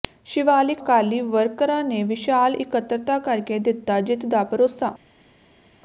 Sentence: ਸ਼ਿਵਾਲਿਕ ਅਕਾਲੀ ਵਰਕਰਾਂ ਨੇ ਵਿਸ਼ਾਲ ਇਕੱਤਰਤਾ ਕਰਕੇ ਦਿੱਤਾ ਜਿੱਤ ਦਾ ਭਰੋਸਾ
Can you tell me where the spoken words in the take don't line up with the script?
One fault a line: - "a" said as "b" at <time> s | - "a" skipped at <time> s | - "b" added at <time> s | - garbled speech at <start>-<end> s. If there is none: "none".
none